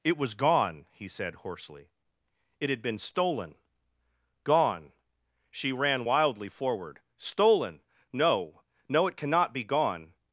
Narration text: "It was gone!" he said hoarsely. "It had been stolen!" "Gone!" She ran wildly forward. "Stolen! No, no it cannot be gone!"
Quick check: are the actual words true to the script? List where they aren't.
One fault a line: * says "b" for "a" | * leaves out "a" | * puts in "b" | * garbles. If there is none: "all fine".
all fine